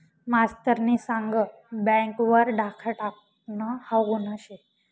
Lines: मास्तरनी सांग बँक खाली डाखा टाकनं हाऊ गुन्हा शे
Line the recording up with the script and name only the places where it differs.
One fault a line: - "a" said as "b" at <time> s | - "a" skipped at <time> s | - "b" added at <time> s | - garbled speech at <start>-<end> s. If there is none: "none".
- "खाली" said as "वर" at 2.2 s